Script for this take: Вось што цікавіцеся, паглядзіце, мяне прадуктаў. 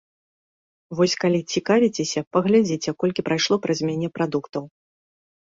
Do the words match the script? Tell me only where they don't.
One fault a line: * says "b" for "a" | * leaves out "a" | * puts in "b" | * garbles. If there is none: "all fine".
* says "калі" for "што"
* puts in "колькі прайшло праз"